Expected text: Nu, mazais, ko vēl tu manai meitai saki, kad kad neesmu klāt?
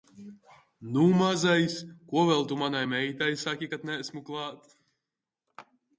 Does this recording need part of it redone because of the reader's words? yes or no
yes